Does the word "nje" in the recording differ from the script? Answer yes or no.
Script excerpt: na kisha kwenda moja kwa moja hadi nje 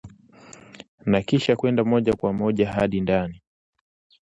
yes